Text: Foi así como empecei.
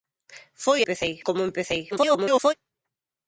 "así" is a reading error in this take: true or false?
true